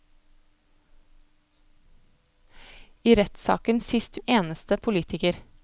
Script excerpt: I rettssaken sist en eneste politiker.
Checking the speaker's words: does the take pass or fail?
pass